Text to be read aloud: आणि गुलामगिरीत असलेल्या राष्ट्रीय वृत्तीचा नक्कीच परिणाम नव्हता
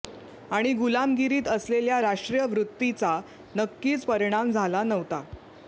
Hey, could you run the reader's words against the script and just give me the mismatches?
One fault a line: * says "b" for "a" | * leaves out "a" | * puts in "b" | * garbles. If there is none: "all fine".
* puts in "झाला"